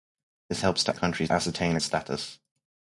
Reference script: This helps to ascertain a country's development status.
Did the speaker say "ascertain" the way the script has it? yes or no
no